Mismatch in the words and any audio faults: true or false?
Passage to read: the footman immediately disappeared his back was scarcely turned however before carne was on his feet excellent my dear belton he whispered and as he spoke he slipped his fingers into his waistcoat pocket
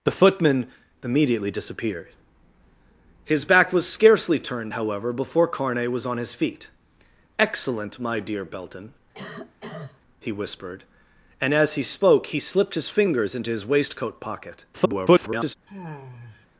true